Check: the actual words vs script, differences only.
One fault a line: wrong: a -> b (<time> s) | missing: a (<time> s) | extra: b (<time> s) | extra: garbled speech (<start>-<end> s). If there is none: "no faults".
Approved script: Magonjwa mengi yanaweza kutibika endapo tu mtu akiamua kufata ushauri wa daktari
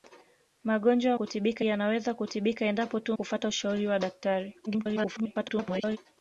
wrong: mengi -> kutibika (1.1 s)
missing: mtu akiamua (3.2 s)
extra: garbled speech (4.7-6.0 s)